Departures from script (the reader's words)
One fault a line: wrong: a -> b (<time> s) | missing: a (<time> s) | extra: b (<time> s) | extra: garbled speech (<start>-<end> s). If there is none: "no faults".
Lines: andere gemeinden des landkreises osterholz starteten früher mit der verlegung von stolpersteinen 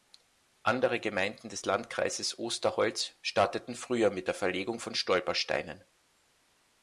no faults